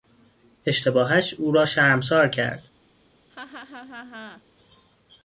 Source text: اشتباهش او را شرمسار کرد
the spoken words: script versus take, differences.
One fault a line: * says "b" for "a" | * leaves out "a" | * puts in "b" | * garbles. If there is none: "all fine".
all fine